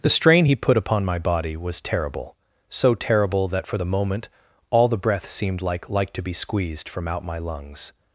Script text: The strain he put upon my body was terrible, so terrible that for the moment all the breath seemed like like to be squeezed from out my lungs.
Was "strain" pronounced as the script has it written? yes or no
yes